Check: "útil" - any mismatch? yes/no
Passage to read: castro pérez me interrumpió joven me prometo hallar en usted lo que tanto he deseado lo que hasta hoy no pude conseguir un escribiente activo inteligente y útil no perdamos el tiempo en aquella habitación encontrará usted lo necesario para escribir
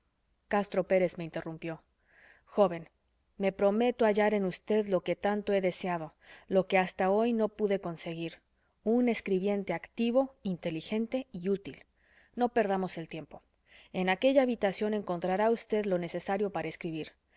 no